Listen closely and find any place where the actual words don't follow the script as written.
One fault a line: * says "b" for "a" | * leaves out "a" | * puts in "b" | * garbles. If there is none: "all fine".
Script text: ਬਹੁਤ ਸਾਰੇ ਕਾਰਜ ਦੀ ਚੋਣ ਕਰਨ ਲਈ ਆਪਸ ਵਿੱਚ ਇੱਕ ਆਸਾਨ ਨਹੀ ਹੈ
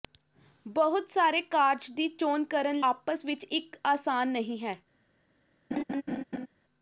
* leaves out "ਲਈ"